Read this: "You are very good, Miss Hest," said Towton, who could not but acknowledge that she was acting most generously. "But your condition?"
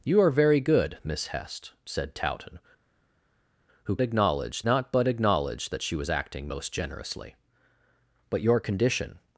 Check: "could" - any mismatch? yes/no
yes